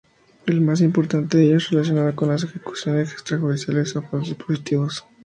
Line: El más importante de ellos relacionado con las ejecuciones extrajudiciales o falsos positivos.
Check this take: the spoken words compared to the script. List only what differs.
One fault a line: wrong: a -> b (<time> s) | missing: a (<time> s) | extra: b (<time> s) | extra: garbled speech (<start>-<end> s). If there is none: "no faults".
no faults